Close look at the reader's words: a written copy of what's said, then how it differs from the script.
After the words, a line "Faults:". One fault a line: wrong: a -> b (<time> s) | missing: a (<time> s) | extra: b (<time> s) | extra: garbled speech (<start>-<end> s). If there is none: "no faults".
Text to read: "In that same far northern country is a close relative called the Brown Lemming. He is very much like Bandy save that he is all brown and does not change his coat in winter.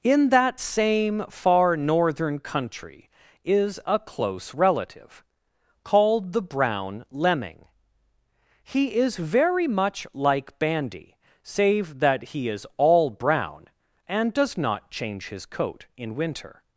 "In that same far northern country is a close relative called the Brown Lemming. He is very much like Bandy save that he is all brown and does not change his coat in winter.
Faults:
no faults